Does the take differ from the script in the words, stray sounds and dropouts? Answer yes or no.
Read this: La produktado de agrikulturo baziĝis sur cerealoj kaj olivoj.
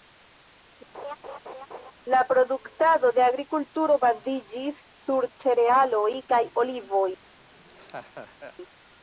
yes